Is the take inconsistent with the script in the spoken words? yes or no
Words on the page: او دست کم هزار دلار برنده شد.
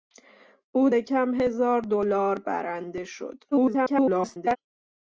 yes